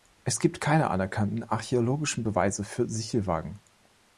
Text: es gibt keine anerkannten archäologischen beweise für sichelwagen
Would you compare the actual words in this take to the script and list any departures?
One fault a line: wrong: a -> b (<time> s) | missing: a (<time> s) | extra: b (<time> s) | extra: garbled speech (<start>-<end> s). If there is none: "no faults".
no faults